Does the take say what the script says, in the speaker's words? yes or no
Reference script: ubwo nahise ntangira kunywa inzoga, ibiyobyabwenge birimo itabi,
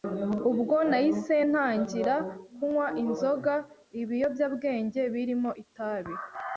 yes